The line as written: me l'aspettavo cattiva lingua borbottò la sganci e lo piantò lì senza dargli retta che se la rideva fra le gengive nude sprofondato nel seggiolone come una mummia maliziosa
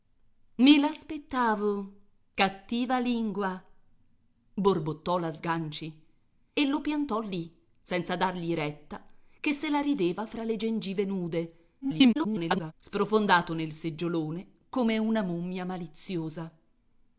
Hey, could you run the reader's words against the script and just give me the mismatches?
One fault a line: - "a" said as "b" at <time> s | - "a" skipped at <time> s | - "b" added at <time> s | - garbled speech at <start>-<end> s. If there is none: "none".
- garbled speech at 11.8-12.7 s